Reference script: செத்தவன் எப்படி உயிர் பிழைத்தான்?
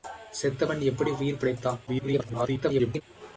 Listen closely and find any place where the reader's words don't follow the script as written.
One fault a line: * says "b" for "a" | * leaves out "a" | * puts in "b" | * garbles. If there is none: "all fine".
* garbles